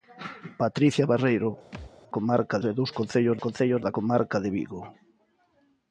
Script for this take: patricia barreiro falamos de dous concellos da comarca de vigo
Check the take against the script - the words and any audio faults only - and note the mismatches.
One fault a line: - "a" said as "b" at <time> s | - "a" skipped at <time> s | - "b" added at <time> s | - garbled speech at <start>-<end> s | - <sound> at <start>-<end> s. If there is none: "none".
- thud at 1.7-1.9 s
- "falamos" said as "comarca" at 2.1 s
- "concellos" added at 3.4 s